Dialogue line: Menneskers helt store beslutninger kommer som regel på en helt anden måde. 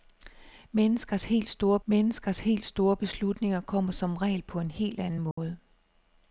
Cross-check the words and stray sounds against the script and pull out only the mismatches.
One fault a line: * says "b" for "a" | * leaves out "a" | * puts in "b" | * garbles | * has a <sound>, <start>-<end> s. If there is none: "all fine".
* puts in "menneskers helt store"
* has a dropout, 5.3-5.4 s